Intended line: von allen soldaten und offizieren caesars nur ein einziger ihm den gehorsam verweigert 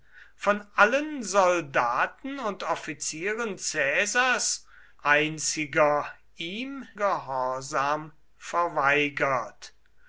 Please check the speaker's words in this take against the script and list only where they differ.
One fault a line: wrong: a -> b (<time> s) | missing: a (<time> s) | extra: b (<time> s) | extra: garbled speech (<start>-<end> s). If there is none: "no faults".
missing: nur ein (4.7 s)
missing: den (6.9 s)